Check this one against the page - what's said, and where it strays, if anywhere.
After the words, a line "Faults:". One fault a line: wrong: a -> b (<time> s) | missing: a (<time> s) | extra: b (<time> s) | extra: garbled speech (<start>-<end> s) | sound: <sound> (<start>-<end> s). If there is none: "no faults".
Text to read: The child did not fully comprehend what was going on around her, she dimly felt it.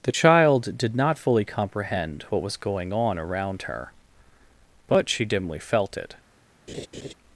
The child did not fully comprehend what was going on around her, but she dimly felt it.
Faults:
extra: but (4.9 s)
sound: laugh (6.7-7.1 s)